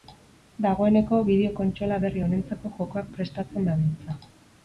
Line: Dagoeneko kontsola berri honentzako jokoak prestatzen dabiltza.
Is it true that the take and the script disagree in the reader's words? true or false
true